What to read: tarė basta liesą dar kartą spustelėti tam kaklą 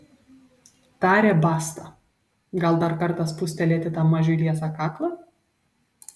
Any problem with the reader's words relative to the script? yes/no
yes